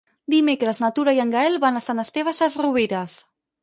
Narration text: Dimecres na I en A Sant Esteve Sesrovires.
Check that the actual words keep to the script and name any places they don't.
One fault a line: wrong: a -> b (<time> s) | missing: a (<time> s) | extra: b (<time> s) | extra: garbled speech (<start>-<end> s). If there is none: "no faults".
extra: Tura (0.9 s)
extra: Gaël van (1.4 s)